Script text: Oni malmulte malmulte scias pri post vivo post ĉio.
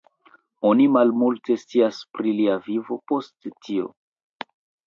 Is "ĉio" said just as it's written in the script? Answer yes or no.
no